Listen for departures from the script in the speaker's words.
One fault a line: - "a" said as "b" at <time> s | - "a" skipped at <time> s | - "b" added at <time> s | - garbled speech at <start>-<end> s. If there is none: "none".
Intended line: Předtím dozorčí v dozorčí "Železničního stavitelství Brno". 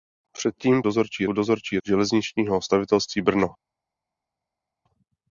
none